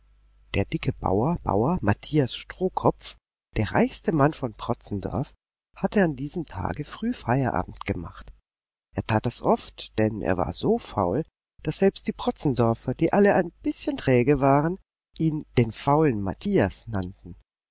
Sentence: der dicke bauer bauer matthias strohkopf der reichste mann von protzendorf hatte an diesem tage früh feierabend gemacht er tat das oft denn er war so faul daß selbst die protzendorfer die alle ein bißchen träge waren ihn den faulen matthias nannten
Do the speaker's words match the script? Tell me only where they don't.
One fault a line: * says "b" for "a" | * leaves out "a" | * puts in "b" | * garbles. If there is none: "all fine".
all fine